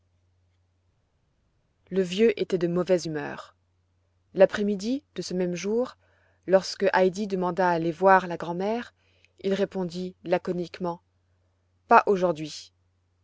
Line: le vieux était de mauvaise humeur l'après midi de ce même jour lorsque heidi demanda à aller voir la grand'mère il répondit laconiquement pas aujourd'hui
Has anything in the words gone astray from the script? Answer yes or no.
no